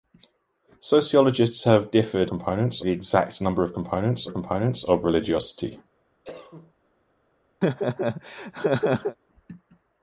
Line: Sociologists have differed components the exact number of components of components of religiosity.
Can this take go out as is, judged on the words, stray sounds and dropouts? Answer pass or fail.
fail